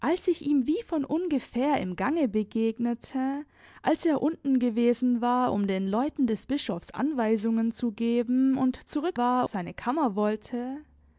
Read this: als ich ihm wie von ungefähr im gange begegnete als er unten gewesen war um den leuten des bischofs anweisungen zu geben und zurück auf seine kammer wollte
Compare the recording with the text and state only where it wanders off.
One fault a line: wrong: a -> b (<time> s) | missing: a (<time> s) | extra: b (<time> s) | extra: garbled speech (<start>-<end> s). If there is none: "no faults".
wrong: auf -> war (9.2 s)